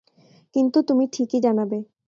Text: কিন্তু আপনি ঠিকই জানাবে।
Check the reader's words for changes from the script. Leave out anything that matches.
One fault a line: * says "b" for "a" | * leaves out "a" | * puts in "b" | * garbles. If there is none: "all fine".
* says "তুমি" for "আপনি"